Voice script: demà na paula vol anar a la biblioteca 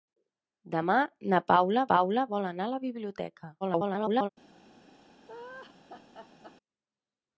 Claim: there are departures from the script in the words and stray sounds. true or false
true